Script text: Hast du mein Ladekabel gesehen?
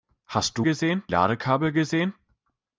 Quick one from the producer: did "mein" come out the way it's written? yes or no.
no